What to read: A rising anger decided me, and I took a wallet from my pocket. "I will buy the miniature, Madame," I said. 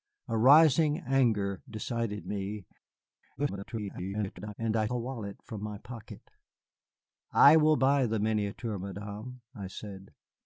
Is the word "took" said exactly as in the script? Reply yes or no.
no